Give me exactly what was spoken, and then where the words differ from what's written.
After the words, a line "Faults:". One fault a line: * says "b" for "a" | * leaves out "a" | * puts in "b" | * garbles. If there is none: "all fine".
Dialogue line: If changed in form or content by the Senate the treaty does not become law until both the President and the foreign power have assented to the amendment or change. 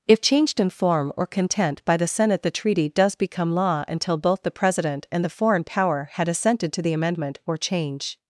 If changed in form or content by the Senate the treaty does become law until both the President and the foreign power had assented to the amendment or change.
Faults:
* leaves out "not"
* says "had" for "have"